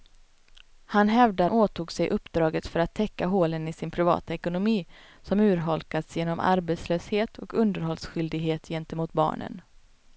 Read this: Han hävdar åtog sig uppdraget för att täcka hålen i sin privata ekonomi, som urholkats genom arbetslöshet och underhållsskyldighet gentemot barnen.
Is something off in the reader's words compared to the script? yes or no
no